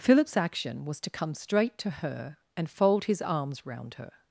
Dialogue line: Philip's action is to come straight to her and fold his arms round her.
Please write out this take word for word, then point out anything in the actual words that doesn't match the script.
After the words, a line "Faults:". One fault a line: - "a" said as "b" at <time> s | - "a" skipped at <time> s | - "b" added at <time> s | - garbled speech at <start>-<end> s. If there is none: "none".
Philip's action was to come straight to her and fold his arms round her.
Faults:
- "is" said as "was" at 0.8 s